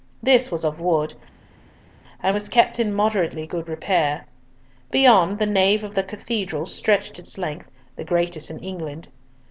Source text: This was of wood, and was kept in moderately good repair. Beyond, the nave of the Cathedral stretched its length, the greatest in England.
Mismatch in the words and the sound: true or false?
false